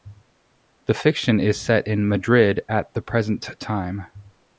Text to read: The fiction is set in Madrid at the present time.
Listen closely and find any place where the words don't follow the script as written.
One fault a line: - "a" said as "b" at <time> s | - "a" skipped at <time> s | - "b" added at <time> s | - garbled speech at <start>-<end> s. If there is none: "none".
none